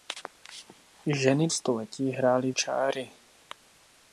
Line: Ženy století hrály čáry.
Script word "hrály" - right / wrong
right